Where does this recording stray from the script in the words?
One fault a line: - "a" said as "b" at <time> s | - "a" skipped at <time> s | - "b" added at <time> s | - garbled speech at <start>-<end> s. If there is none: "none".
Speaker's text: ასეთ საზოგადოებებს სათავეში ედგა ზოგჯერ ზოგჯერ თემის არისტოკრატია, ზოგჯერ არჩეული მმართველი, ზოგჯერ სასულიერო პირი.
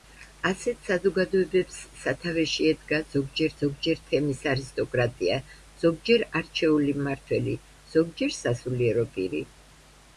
none